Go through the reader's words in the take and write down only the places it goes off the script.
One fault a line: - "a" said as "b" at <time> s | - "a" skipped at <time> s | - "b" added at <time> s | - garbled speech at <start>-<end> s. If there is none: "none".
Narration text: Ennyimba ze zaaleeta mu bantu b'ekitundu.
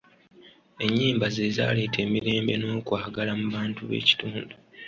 - "emirembe n'okwagala" added at 2.1 s